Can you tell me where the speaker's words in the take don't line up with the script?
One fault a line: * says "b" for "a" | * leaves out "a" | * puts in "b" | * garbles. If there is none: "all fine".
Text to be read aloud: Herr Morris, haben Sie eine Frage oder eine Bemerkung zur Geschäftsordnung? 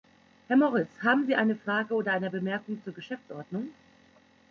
all fine